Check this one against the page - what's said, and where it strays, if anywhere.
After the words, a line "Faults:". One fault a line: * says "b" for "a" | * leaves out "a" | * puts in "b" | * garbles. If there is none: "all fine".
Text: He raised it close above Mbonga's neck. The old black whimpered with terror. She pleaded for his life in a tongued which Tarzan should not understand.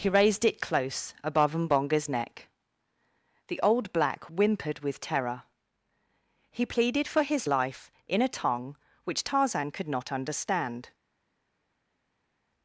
He raised it close above Mbonga's neck. The old black whimpered with terror. He pleaded for his life in a tongue which Tarzan could not understand.
Faults:
* says "He" for "She"
* says "tongue" for "tongued"
* says "could" for "should"